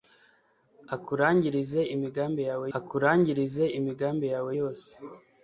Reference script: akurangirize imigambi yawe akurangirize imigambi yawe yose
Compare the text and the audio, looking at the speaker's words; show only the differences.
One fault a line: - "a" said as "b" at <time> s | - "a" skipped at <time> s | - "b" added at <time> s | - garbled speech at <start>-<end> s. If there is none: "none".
none